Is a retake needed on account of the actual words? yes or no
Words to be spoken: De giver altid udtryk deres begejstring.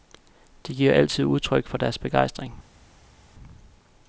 yes